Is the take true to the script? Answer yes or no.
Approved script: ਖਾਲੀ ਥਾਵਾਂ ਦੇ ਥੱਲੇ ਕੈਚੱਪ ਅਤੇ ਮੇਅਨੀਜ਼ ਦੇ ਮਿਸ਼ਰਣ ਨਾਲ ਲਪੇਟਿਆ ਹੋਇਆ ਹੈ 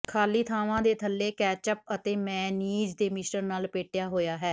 yes